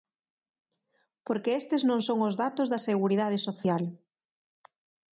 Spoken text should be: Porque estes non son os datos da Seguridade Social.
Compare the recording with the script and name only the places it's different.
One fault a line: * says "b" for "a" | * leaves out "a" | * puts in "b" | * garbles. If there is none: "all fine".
all fine